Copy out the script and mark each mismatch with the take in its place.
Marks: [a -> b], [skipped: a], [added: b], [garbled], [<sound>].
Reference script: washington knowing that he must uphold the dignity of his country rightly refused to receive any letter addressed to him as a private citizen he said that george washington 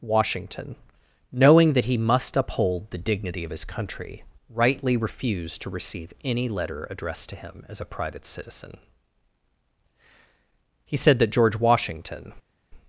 washington knowing that he must uphold the dignity of his country rightly refused to receive any letter addressed to him as a private citizen he said that george washington